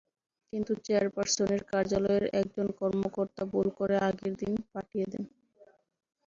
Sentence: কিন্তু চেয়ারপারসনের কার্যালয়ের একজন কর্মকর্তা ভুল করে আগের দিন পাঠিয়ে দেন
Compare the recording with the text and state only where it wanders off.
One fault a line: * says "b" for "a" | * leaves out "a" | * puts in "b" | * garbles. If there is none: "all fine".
all fine